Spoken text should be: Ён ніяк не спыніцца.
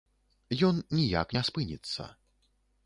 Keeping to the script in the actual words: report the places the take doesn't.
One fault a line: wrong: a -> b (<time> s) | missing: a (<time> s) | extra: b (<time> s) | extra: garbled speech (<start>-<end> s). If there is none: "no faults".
no faults